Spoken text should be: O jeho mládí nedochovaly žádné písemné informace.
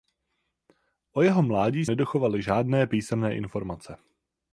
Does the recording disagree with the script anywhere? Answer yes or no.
no